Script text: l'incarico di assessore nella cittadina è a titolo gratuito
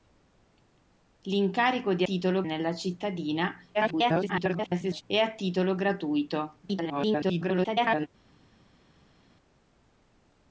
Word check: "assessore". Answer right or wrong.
wrong